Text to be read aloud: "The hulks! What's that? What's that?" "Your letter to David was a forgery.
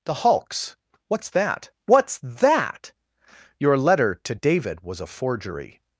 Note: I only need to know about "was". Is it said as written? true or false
true